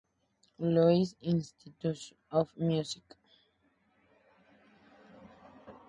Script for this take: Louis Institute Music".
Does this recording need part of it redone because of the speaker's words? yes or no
yes